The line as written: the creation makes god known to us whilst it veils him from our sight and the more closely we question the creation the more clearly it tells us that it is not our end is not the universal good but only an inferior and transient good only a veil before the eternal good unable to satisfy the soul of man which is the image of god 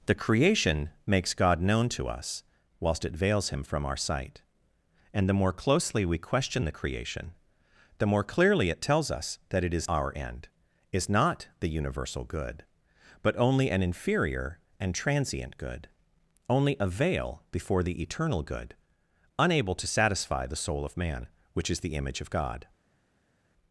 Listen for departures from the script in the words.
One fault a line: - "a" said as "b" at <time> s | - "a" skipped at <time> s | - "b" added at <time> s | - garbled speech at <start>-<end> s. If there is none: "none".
- "not" skipped at 9.9 s